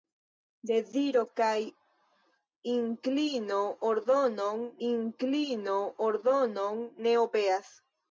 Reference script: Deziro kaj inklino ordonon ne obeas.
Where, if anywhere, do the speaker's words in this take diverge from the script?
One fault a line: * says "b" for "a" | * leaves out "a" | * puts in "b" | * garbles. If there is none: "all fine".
* puts in "inklino ordonon"